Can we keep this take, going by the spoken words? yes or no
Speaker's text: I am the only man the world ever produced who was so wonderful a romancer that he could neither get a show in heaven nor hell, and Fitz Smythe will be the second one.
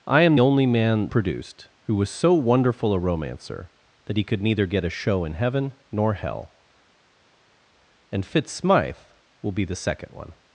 no